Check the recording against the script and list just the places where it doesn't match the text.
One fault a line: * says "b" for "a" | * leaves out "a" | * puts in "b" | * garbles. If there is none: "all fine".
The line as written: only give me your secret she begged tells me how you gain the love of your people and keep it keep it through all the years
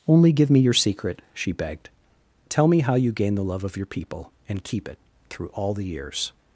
* says "tell" for "tells"
* leaves out "keep it"